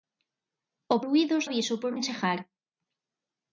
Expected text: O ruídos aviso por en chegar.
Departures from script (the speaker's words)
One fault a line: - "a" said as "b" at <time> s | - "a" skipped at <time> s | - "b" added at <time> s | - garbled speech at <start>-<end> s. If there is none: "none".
none